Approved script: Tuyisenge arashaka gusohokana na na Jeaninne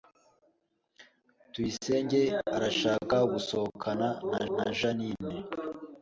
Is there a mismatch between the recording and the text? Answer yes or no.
no